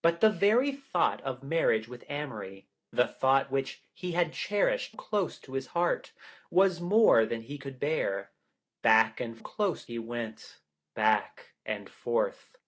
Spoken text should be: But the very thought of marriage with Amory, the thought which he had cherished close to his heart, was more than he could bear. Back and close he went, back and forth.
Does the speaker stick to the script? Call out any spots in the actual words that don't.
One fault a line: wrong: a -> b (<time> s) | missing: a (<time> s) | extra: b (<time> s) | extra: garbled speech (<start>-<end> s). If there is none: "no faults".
no faults